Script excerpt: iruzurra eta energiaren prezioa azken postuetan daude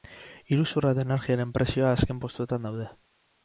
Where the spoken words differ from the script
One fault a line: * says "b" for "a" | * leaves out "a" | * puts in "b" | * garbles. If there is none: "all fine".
all fine